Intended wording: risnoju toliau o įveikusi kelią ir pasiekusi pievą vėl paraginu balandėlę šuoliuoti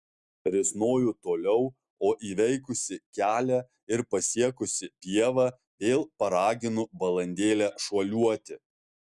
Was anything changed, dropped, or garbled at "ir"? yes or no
no